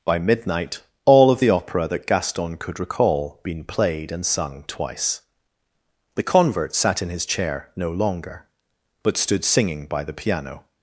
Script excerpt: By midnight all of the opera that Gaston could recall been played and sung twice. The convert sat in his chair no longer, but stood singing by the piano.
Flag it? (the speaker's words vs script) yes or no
no